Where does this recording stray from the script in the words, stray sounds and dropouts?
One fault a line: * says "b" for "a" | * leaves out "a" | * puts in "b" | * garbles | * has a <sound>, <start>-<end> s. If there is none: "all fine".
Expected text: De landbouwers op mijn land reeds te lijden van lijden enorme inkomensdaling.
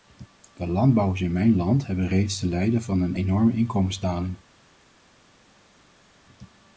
* says "in" for "op"
* puts in "hebben"
* says "een" for "lijden"